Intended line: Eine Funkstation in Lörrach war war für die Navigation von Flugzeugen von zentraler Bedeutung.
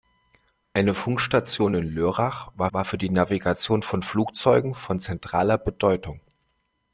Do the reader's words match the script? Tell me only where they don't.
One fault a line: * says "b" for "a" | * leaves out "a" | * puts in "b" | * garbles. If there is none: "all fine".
all fine